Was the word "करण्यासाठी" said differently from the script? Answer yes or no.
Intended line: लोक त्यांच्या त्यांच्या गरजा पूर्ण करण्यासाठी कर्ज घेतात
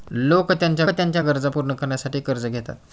no